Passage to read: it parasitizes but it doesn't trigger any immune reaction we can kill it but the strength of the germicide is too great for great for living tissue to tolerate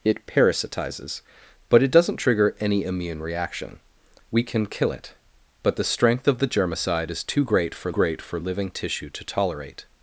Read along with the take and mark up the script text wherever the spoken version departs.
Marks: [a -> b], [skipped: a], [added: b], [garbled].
it parasitizes but it doesn't trigger any immune reaction we can kill it but the strength of the germicide is too great for great for living tissue to tolerate